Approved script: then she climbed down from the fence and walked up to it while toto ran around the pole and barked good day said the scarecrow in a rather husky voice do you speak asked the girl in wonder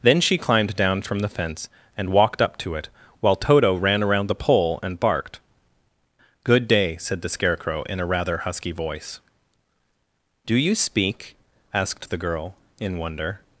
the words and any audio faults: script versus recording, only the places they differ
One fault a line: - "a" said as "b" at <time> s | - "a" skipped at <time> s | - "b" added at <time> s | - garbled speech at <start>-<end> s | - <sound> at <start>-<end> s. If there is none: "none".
none